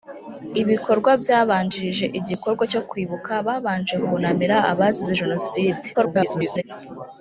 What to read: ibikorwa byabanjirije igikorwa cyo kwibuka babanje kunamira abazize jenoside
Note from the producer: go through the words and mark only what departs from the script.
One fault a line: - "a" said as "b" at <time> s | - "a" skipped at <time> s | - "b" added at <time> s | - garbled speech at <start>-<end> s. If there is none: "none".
- garbled speech at 5.9-6.6 s